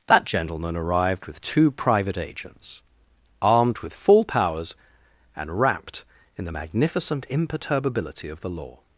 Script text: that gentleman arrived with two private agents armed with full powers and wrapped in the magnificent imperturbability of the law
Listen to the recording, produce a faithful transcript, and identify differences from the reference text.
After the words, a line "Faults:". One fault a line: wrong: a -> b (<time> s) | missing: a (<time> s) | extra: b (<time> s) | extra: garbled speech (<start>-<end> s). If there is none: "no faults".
that gentleman arrived with two private agents armed with full powers and wrapped in the magnificent imperturbability of the law
Faults:
no faults